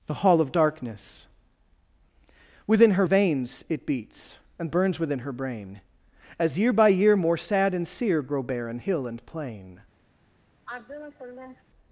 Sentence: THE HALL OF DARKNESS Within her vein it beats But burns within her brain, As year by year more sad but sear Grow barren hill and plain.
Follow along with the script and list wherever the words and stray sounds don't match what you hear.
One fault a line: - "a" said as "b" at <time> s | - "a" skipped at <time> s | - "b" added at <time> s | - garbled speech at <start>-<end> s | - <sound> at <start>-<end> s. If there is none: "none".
- "vein" said as "veins" at 3.0 s
- "But" said as "And" at 4.6 s
- "but" said as "and" at 7.7 s
- sigh at 10.7-11.6 s